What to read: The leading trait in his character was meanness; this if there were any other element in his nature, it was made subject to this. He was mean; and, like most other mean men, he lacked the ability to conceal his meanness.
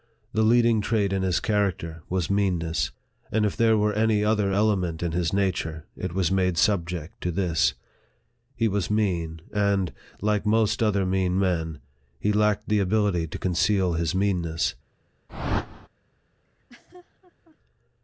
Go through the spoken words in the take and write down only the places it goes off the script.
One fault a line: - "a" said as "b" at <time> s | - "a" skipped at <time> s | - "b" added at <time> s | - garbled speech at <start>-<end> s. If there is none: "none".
- "this" said as "and" at 3.3 s